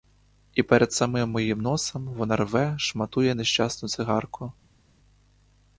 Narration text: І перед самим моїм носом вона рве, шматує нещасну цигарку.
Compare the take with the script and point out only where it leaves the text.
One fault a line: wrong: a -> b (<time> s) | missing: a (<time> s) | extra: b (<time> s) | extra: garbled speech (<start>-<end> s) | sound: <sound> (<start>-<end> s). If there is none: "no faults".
no faults